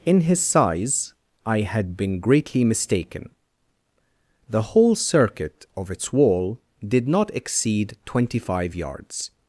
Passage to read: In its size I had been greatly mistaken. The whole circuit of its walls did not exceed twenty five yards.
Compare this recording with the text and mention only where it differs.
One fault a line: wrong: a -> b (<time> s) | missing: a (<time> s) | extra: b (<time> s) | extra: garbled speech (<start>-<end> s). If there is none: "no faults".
wrong: its -> his (0.2 s)
wrong: walls -> wall (6.1 s)